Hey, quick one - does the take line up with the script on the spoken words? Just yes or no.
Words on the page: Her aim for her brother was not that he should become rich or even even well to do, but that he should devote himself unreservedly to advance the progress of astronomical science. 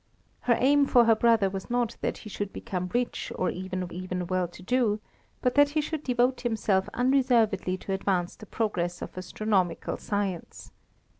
yes